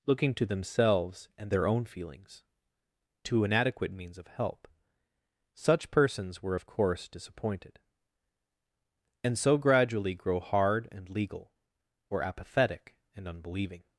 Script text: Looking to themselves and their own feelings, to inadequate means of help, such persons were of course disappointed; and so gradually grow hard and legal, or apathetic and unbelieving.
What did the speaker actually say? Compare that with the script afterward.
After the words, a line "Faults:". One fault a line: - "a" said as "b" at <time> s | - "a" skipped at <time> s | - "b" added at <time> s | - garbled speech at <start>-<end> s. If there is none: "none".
Looking to themselves and their own feelings, to inadequate means of help, such persons were of course disappointed; and so gradually grow hard and legal, or apathetic and unbelieving.
Faults:
none